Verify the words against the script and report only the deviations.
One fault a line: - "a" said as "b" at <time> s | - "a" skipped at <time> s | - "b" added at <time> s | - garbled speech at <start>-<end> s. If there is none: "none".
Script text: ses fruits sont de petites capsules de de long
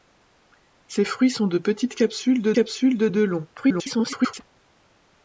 - "capsules de" added at 2.5 s
- garbled speech at 3.6-4.4 s